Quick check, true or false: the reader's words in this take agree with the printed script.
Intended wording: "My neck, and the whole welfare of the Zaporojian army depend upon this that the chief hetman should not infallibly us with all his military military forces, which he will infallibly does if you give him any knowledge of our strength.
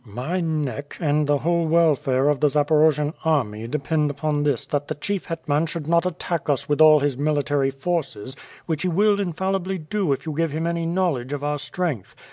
false